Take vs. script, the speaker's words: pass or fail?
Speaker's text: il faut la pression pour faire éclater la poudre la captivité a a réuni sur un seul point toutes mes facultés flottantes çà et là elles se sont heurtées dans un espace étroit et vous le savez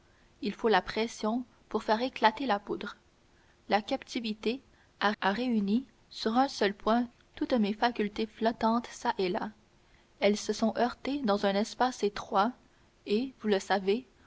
pass